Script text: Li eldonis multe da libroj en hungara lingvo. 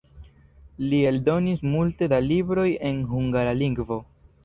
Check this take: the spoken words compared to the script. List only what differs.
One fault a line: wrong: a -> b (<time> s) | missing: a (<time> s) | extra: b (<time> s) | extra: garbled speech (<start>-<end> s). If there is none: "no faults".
no faults